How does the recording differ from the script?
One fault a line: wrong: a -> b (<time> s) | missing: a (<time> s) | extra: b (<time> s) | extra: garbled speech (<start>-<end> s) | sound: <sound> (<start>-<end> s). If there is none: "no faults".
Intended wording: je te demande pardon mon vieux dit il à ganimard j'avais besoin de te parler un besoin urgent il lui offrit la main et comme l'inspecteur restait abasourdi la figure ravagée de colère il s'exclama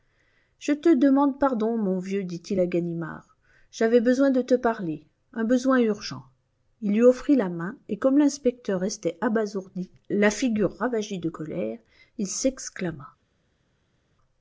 no faults